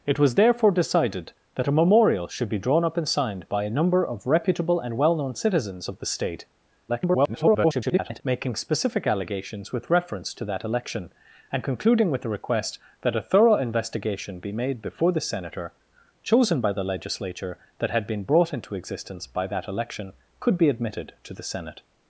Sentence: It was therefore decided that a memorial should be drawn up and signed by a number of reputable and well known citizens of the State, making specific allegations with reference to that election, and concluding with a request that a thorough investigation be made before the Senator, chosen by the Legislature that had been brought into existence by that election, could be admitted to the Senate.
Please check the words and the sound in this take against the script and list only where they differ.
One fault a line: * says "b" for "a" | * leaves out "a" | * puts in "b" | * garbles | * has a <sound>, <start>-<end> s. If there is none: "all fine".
* garbles